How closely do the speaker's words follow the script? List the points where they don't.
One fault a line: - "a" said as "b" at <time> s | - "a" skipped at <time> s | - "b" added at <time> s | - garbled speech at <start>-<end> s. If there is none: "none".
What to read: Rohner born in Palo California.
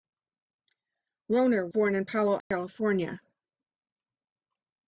none